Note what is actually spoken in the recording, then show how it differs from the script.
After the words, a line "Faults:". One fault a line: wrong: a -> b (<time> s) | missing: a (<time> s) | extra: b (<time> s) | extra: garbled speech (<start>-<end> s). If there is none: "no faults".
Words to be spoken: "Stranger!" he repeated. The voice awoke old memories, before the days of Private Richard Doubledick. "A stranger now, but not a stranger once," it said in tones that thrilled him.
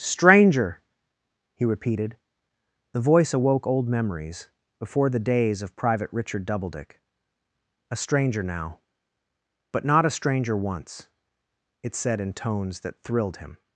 "Stranger!" he repeated. The voice awoke old memories, before the days of Private Richard Doubledick. "A stranger now, but not a stranger once," it said in tones that thrilled him.
Faults:
no faults